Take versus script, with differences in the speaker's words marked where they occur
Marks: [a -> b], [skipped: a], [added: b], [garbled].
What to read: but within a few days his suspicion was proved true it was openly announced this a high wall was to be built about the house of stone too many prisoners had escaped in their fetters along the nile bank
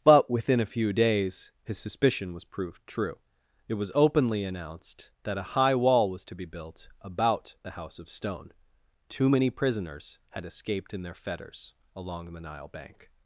but within a few days his suspicion was proved true it was openly announced [this -> that] a high wall was to be built about the house of stone too many prisoners had escaped in their fetters along the nile bank